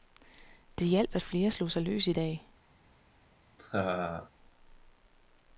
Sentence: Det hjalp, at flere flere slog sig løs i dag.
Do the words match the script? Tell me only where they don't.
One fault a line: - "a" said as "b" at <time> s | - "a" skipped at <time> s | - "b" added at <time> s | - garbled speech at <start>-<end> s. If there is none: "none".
- "flere" skipped at 1.5 s